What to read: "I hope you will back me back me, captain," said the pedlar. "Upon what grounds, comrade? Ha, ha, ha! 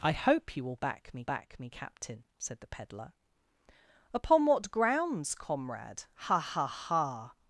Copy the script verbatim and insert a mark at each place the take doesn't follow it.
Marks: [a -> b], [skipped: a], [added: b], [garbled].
"I hope you will back me back me, captain," said the pedlar. "Upon what grounds, comrade? Ha, ha, ha!